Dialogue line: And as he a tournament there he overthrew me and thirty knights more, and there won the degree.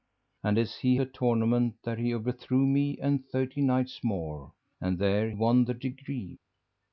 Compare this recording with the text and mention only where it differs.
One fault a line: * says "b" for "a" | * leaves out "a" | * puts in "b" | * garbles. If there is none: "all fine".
all fine